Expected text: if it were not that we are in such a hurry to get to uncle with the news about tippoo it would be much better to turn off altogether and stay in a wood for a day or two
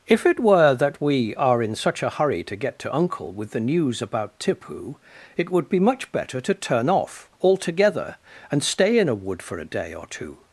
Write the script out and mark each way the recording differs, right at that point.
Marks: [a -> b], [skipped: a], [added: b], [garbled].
if it were [skipped: not] that we are in such a hurry to get to uncle with the news about tippoo it would be much better to turn off altogether and stay in a wood for a day or two